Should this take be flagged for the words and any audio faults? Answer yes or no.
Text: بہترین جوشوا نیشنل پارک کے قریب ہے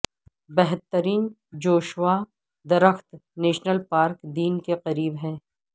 yes